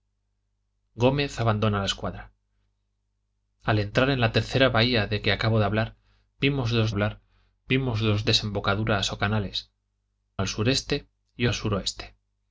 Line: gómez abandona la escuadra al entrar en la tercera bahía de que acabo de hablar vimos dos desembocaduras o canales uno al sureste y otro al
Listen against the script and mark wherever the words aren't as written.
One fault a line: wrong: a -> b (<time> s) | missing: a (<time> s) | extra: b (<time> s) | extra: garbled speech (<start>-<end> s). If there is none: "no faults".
extra: hablar vimos dos (6.9 s)
missing: uno (9.7 s)
missing: otro (11.5 s)